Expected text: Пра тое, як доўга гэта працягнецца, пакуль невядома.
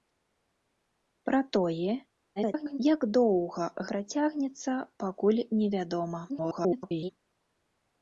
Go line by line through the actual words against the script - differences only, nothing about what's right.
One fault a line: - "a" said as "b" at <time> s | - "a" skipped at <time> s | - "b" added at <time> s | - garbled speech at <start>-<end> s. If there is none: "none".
- garbled speech at 2.4-2.8 s
- "гэта" skipped at 3.7 s
- garbled speech at 6.3-7.1 s